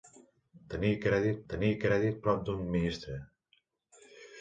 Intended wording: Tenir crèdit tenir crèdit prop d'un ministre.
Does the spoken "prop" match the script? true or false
true